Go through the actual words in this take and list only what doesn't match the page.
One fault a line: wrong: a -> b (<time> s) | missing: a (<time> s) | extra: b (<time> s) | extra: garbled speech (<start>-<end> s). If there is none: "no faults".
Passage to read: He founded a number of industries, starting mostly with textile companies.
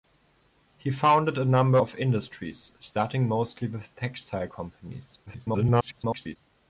extra: garbled speech (5.3-6.4 s)